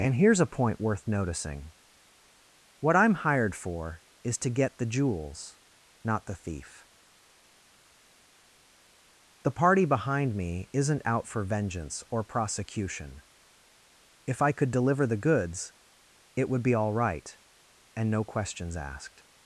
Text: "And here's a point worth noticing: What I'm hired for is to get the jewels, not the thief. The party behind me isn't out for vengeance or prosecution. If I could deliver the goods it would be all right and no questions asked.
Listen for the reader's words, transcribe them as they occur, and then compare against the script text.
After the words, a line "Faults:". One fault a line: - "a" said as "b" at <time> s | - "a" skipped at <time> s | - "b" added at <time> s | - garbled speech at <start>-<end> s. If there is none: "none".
"And here's a point worth noticing: What I'm hired for is to get the jewels, not the thief. The party behind me isn't out for vengeance or prosecution. If I could deliver the goods it would be all right and no questions asked.
Faults:
none